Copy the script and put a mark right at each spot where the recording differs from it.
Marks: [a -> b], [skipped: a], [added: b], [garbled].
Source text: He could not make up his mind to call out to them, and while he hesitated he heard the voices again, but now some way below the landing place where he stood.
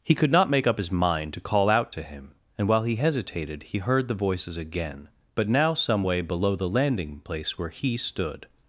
He could not make up his mind to call out to [them, -> him] and while he hesitated he heard the voices again, but now some way below the landing place where he stood.